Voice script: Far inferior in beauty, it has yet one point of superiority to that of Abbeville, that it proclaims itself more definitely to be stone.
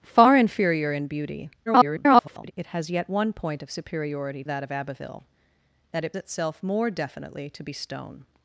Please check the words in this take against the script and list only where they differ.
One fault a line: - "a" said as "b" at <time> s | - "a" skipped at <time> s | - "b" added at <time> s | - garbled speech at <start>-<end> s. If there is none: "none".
- garbled speech at 1.7-2.5 s
- "to" skipped at 4.4 s
- "proclaims" skipped at 6.2 s